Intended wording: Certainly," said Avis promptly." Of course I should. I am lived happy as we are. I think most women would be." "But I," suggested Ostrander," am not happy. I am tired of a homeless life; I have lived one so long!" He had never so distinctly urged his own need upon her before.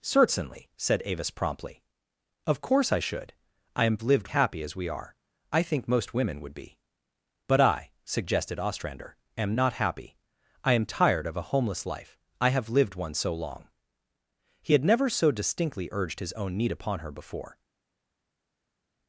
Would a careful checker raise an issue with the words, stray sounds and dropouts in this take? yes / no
no